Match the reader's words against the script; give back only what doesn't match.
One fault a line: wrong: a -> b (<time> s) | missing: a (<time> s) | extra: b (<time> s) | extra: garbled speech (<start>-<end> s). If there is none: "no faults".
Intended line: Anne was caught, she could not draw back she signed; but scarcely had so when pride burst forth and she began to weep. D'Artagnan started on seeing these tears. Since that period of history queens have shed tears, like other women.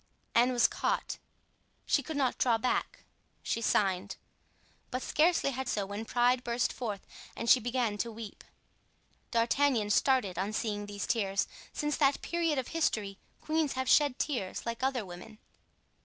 no faults